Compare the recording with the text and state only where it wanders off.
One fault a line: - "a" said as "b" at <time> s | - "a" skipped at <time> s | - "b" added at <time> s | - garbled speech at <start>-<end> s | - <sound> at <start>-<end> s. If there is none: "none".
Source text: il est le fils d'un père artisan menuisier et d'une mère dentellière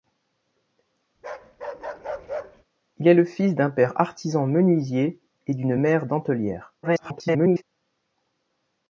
- bark at 1.2-2.6 s
- garbled speech at 6.8-7.6 s